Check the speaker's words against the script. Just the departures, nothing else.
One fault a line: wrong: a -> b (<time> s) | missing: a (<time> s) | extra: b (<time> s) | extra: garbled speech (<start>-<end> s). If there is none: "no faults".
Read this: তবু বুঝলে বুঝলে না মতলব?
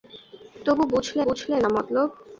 no faults